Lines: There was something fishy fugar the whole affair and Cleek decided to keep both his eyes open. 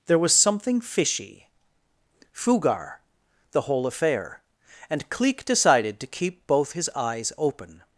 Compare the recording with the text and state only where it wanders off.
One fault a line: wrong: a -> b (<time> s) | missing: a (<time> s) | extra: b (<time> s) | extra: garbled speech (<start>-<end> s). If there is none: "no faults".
no faults